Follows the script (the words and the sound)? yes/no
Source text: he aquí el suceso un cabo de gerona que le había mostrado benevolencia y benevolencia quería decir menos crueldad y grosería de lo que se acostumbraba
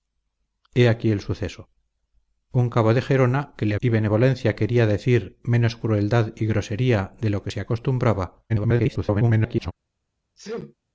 no